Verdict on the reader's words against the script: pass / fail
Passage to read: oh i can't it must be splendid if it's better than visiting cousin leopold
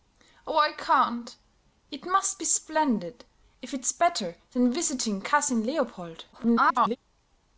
fail